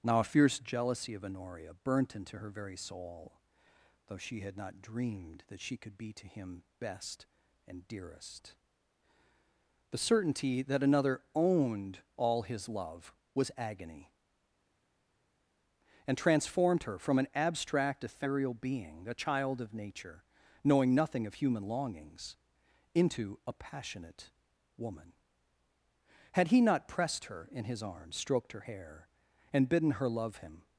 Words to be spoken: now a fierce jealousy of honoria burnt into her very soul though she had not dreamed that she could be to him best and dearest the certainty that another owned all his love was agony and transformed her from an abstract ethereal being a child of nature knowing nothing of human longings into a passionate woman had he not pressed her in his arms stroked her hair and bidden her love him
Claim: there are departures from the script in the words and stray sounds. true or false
false